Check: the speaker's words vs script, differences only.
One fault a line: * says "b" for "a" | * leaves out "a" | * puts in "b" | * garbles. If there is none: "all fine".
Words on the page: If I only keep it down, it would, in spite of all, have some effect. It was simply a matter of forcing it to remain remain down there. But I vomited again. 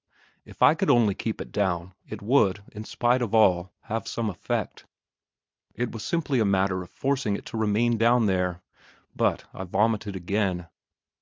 * puts in "could"
* leaves out "remain"